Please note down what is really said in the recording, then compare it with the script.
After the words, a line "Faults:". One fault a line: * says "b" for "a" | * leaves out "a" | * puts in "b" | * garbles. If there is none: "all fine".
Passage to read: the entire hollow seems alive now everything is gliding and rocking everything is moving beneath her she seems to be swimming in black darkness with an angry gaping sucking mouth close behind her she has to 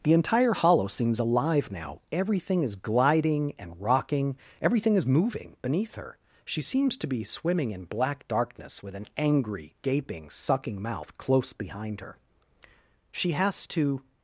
the entire hollow seems alive now everything is gliding and rocking everything is moving beneath her she seems to be swimming in black darkness with an angry gaping sucking mouth close behind her she has to
Faults:
all fine